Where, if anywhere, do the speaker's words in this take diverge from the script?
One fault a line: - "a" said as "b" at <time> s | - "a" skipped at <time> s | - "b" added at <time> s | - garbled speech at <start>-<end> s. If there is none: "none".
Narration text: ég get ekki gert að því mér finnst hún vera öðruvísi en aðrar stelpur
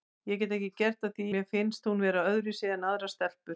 none